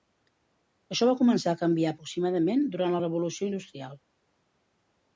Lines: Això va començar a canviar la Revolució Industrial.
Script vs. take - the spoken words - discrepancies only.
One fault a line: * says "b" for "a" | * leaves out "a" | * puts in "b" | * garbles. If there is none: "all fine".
* puts in "aproximadament durant"